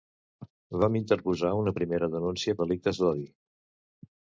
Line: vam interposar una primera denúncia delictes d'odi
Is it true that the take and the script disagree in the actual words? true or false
false